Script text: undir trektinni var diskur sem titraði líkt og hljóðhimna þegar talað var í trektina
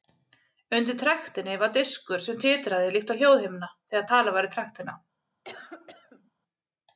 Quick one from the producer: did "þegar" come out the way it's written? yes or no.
yes